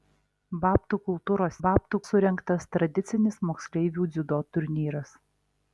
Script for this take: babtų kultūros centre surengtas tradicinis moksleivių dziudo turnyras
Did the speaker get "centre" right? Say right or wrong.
wrong